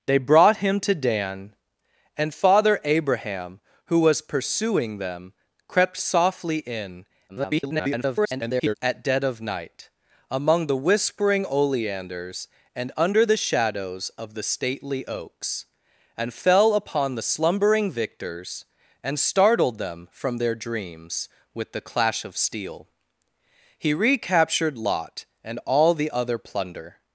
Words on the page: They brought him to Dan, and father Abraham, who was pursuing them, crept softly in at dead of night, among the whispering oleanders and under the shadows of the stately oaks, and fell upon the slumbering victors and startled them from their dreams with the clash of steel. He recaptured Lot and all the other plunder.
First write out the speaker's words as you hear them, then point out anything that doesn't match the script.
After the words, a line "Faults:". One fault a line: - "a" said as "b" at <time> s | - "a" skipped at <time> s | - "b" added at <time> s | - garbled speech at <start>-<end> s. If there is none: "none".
They brought him to Dan, and father Abraham, who was pursuing them, crept softly in [garbled] at dead of night, among the whispering oleanders and under the shadows of the stately oaks, and fell upon the slumbering victors and startled them from their dreams with the clash of steel. He recaptured Lot and all the other plunder.
Faults:
- garbled speech at 7.3-8.7 s